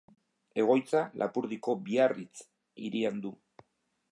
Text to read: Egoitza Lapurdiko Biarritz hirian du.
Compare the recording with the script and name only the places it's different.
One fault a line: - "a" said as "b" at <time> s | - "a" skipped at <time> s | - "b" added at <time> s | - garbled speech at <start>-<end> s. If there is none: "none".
none